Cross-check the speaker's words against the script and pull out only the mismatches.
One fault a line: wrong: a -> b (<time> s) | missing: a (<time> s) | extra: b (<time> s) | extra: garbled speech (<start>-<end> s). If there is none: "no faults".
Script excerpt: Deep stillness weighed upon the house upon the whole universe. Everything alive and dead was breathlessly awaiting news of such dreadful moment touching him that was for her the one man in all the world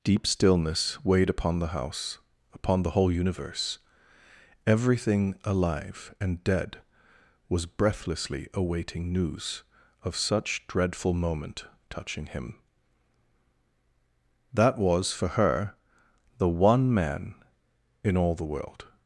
no faults